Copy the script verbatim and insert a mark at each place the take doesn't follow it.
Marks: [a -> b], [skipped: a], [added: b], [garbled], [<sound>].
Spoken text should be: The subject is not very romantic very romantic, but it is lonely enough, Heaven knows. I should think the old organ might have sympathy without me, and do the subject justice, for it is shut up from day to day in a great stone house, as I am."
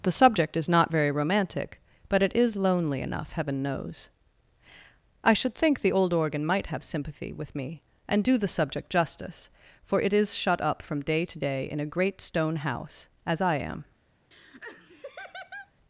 The subject is not very romantic [skipped: very romantic,] but it is lonely enough, Heaven knows. I should think the old organ might have sympathy [without -> with] me, and do the subject justice, for it is shut up from day to day in a great stone house, as I am." [laugh]